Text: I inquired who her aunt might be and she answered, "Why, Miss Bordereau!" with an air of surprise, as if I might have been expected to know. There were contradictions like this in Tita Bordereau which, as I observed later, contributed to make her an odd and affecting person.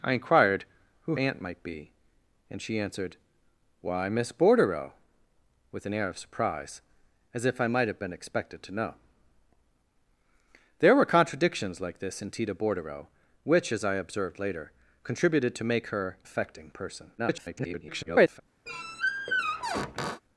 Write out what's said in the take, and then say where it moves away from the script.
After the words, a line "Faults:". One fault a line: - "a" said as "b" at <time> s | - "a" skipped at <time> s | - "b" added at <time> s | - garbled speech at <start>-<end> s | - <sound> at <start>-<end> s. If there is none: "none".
I inquired who aunt might be and she answered, "Why, Miss Bordereau!" with an air of surprise, as if I might have been expected to know. There were contradictions like this in Tita Bordereau which, as I observed later, contributed to make her affecting person. [garbled]
Faults:
- "her" skipped at 1.2 s
- "an odd and" skipped at 16.2 s
- garbled speech at 17.2-18.4 s
- squeak at 18.7-20.2 s